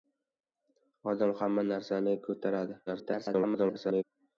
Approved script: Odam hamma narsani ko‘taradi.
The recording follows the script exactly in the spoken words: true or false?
false